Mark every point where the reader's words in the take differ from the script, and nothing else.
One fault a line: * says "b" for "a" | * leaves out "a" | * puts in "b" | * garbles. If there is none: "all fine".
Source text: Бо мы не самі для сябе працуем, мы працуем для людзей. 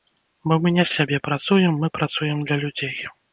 * leaves out "самі для"